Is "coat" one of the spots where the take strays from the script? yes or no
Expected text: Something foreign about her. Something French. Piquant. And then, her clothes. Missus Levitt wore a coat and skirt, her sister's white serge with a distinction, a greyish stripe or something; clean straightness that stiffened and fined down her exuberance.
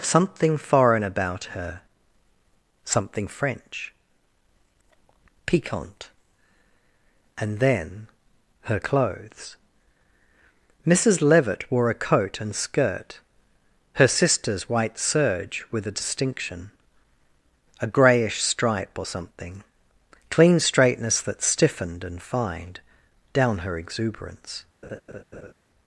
no